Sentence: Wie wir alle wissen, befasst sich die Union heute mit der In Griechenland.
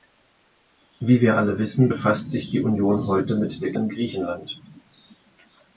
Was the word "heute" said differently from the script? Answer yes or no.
no